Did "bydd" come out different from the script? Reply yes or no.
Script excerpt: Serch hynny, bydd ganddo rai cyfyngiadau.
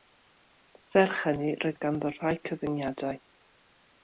yes